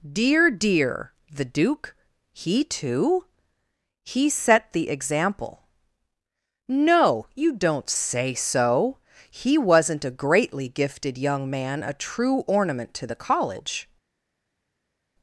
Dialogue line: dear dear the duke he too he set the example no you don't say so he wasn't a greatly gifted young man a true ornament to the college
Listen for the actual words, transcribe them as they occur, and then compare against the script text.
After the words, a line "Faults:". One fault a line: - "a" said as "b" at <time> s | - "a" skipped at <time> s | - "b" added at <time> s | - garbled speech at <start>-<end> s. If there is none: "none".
dear dear the duke he too he set the example no you don't say so he wasn't a greatly gifted young man a true ornament to the college
Faults:
none